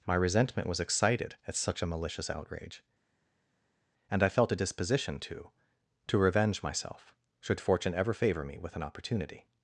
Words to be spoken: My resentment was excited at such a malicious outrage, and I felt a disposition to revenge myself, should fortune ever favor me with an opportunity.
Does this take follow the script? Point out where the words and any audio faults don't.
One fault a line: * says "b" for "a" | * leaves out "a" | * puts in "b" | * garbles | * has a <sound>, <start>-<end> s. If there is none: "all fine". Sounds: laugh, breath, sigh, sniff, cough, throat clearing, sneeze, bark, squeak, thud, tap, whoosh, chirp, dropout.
* puts in "to"